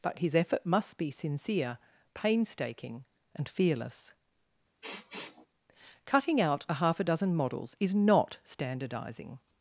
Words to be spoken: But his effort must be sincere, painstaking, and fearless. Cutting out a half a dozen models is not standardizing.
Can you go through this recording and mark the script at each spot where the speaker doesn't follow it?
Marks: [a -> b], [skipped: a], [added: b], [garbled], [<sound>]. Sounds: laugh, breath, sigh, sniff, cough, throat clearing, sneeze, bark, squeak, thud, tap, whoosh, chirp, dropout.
But his effort must be sincere, painstaking, and fearless. [sniff] Cutting out a half a dozen models is not standardizing.